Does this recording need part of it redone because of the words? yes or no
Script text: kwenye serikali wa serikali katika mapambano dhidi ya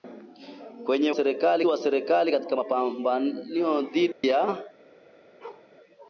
no